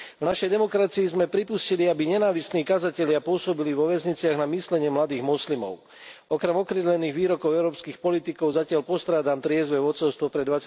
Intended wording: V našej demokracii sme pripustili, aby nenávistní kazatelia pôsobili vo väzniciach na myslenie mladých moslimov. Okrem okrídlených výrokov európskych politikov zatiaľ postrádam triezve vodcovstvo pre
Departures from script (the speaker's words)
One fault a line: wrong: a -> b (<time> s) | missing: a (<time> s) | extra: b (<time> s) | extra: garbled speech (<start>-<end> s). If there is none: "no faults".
no faults